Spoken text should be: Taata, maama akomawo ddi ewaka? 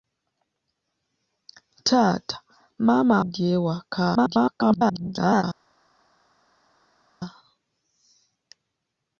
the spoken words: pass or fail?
fail